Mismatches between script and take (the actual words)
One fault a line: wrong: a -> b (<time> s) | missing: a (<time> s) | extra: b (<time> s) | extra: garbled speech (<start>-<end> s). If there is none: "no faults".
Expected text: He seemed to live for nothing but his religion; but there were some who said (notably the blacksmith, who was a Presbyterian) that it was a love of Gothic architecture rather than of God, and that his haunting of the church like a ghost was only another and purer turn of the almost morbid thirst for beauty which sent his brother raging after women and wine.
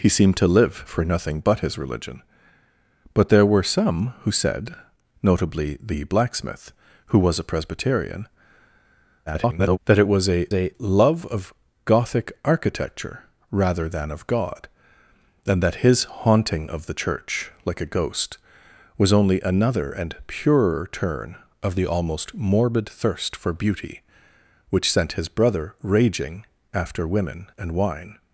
extra: garbled speech (9.3-9.8 s)
extra: a (10.5 s)